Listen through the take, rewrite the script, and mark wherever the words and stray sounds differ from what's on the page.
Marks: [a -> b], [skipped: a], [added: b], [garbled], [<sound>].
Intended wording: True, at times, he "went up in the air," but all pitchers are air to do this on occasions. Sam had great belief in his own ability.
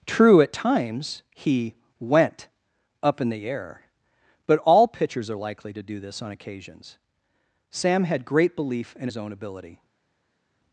True, at times, he "went up in the air," but all pitchers are [air -> likely] to do this on occasions. Sam had great belief in his own ability.